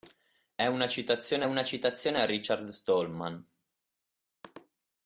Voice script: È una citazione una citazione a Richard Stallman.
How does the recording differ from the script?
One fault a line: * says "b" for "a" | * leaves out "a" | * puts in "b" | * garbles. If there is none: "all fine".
all fine